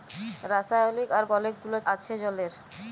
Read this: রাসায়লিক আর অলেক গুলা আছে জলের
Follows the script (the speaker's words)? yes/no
yes